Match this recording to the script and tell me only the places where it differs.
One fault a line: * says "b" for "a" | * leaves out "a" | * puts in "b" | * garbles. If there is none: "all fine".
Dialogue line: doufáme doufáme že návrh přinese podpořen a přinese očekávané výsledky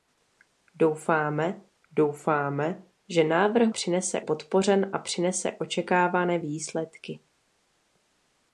all fine